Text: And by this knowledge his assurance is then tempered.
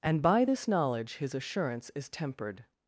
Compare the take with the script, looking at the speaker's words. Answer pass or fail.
fail